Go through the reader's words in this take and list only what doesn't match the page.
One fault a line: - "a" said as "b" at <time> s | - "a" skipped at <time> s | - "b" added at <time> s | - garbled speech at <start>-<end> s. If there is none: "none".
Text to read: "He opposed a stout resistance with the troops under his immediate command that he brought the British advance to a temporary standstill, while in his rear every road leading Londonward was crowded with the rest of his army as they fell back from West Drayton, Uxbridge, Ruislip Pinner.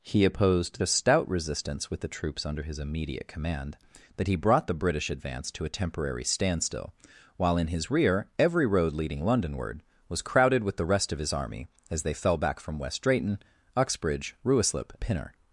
none